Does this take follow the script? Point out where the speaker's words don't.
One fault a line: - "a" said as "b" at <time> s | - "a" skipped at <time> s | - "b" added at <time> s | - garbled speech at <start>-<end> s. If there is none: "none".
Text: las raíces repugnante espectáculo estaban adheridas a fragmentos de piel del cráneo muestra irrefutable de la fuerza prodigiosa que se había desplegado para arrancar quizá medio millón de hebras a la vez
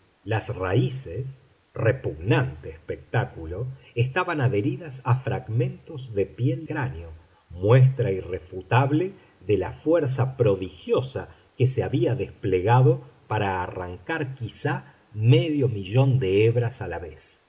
- "del" skipped at 6.7 s